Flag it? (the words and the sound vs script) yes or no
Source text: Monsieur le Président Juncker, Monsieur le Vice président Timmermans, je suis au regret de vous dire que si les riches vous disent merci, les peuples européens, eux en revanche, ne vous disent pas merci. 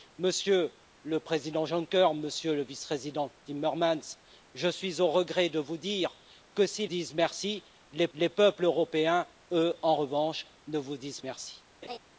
yes